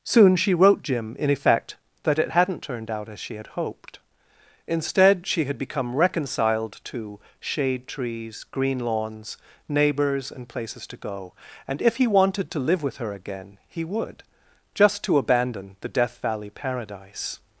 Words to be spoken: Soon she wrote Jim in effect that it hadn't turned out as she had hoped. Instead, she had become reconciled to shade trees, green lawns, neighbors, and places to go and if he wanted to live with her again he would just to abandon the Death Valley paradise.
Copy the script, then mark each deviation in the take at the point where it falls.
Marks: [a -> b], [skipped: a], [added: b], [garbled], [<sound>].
Soon she wrote Jim in effect that it hadn't turned out as she had hoped. Instead, she had become reconciled to shade trees, green lawns, neighbors, and places to go and if he wanted to live with her again he would just to abandon the Death Valley paradise.